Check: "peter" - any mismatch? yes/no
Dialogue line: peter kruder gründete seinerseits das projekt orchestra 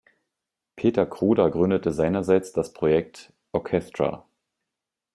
no